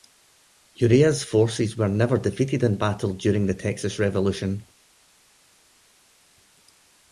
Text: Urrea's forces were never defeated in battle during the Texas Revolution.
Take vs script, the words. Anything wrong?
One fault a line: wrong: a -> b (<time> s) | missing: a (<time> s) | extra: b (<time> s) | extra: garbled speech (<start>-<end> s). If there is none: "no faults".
no faults